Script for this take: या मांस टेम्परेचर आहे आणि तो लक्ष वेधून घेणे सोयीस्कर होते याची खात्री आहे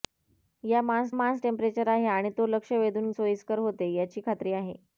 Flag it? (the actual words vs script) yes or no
yes